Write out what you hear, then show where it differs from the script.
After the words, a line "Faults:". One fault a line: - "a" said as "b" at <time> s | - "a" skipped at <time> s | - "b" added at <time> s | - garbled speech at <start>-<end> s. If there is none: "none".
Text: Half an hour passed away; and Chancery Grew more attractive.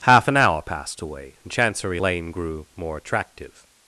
Half an hour passed away; and Chancery Lane grew more attractive.
Faults:
- "Lane" added at 2.0 s